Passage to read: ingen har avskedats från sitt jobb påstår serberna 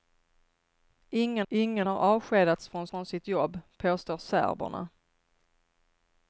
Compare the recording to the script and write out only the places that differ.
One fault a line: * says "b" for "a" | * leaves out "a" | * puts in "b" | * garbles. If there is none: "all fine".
* puts in "ingen"
* puts in "från"